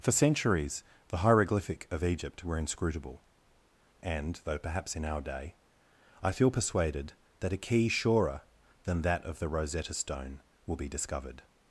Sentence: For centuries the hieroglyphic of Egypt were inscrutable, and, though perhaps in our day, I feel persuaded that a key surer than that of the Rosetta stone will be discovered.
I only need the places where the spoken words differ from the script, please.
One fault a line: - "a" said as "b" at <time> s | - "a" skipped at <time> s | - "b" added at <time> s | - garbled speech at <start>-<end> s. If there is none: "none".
none